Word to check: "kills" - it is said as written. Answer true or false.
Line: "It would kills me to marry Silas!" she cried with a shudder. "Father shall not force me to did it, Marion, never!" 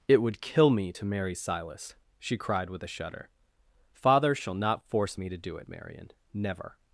false